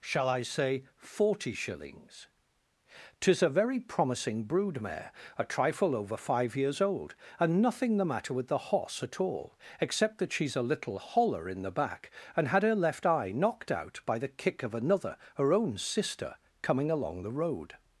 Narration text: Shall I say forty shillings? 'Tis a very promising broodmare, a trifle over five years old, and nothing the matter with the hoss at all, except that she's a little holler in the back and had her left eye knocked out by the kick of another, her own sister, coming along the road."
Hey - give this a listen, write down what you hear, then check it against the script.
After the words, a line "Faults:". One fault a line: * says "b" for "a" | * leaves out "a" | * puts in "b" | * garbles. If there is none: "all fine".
Shall I say forty shillings? 'Tis a very promising broodmare, a trifle over five years old, and nothing the matter with the hoss at all, except that she's a little holler in the back and had her left eye knocked out by the kick of another, her own sister, coming along the road."
Faults:
all fine